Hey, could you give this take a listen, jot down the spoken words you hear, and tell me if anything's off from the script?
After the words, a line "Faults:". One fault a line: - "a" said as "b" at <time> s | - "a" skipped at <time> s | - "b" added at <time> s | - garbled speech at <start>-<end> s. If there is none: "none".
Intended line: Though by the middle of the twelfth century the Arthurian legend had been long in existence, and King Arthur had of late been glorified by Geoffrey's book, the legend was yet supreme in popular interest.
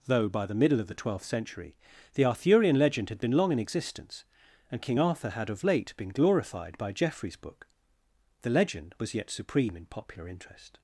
Though by the middle of the twelfth century the Arthurian legend had been long in existence, and King Arthur had of late been glorified by Geoffrey's book, the legend was yet supreme in popular interest.
Faults:
none